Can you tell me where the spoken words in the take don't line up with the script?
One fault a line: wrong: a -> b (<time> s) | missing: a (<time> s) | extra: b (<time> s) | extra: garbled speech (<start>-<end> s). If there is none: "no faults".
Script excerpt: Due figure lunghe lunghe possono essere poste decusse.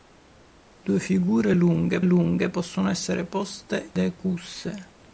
no faults